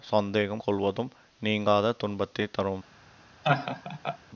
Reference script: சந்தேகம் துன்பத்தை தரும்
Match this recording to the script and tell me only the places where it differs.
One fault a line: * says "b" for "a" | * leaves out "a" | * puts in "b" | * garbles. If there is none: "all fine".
* puts in "கொள்வதும் நீங்காத"